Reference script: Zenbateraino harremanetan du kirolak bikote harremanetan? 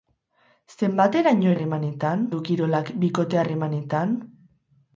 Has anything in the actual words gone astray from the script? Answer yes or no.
no